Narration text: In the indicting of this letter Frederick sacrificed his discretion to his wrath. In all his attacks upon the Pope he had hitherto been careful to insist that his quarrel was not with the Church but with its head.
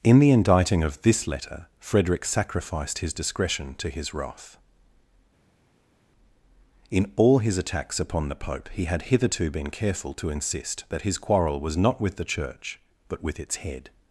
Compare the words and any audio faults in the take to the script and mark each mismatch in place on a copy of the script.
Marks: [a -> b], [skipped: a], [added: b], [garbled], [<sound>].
In the indicting of this letter Frederick sacrificed his discretion to his wrath. In all his attacks upon the Pope he had hitherto been careful to insist that his quarrel was not with the Church but with its head.